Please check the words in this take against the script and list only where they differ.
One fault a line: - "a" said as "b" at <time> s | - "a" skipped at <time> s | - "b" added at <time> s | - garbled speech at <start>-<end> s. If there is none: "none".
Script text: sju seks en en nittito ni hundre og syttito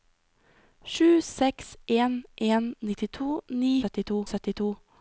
- "hundre" said as "syttito" at 3.8 s